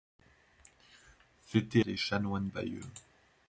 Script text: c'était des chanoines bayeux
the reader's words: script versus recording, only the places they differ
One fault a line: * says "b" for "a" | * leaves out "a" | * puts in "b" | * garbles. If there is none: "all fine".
all fine